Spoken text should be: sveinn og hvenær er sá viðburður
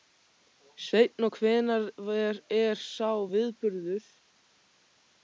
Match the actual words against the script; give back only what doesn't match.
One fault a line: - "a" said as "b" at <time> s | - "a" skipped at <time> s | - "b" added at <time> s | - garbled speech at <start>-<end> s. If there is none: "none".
none